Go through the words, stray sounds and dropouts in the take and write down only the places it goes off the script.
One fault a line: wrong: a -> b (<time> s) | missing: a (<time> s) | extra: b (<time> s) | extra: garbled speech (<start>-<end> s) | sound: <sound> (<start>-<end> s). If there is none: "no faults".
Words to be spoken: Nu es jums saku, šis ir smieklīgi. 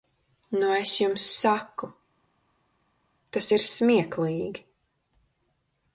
wrong: šis -> tas (3.4 s)